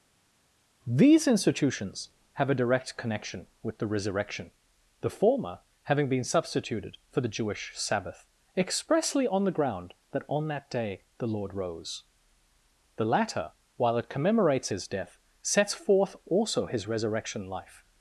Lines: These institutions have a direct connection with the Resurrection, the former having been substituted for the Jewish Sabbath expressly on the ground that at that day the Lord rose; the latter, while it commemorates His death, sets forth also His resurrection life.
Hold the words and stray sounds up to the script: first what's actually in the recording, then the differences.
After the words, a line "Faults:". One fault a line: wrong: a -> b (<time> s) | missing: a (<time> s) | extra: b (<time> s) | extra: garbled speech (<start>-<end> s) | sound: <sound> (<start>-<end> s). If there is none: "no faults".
These institutions have a direct connection with the Resurrection, the former having been substituted for the Jewish Sabbath expressly on the ground that on that day the Lord rose; the latter, while it commemorates His death, sets forth also His resurrection life.
Faults:
wrong: at -> on (10.3 s)